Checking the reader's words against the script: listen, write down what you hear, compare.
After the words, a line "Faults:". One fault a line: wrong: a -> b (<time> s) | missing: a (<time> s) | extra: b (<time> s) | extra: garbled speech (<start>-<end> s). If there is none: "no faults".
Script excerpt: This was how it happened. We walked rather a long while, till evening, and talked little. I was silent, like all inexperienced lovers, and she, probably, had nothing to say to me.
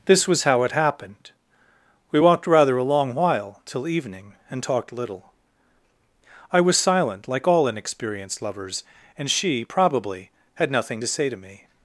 This was how it happened. We walked rather a long while, till evening, and talked little. I was silent, like all inexperienced lovers, and she, probably, had nothing to say to me.
Faults:
no faults